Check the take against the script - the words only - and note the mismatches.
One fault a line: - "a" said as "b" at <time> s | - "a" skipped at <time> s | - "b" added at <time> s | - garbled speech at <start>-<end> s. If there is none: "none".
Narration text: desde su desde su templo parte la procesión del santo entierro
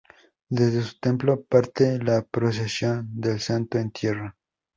- "desde su" skipped at 0.9 s